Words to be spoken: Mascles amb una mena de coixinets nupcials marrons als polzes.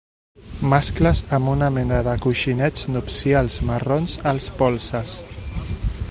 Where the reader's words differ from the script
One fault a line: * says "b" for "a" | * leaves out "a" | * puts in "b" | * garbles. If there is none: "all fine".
all fine